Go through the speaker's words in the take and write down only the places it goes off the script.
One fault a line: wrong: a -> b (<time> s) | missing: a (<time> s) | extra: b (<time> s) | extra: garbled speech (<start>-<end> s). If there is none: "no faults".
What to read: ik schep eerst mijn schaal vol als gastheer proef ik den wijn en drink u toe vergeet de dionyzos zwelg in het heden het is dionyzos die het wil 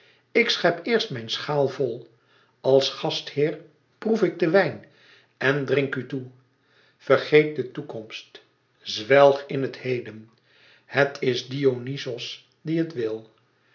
wrong: dionyzos -> toekomst (7.7 s)